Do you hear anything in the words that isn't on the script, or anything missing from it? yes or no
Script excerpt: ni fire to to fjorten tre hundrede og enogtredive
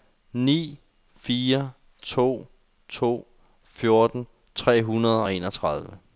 no